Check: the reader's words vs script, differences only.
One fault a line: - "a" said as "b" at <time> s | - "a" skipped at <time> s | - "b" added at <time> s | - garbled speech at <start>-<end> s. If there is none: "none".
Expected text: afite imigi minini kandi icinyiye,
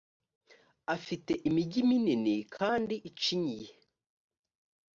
none